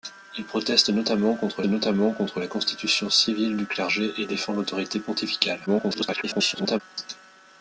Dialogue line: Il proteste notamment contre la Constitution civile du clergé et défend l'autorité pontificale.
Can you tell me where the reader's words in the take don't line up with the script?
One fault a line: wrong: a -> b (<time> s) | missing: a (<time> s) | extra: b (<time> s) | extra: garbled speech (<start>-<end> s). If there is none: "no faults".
extra: notamment contre (1.6 s)
extra: garbled speech (5.7-6.8 s)